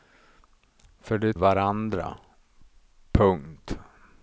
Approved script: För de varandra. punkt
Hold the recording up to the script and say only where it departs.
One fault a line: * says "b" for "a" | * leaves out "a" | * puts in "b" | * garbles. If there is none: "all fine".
all fine